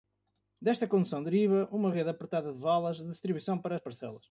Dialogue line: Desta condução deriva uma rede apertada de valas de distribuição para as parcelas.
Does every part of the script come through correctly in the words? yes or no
yes